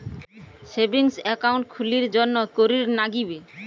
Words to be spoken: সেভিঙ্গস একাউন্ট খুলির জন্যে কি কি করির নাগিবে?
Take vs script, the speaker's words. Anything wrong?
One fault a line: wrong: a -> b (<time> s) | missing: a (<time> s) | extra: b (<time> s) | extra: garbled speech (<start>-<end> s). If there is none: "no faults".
missing: কি কি (2.4 s)